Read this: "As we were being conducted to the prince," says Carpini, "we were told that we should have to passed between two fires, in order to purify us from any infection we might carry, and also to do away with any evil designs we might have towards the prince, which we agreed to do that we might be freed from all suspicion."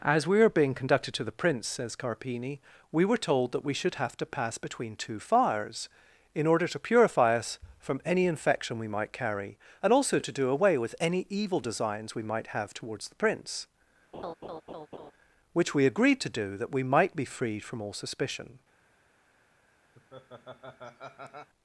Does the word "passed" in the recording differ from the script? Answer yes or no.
yes